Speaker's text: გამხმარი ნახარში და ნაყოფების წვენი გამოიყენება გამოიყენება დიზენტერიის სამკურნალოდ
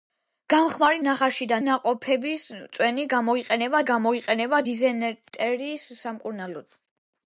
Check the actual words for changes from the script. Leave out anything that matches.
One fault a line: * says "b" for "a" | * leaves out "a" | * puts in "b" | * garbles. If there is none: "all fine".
all fine